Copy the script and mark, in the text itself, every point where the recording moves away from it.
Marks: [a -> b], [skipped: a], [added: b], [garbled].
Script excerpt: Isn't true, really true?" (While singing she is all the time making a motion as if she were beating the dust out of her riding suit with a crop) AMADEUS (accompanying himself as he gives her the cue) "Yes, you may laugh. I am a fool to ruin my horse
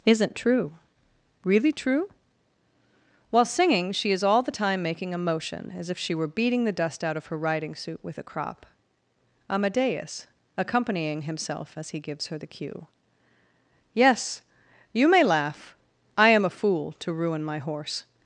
Isn't true, really true?" (While singing she is all the time making a motion as if she were beating the dust out of her riding suit with a crop) AMADEUS (accompanying himself as he gives her the cue) "Yes, you may laugh. I am a fool to ruin my horse